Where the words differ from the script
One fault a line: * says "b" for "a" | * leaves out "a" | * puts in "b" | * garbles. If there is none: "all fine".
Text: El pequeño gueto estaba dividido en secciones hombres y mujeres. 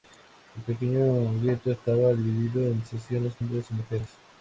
all fine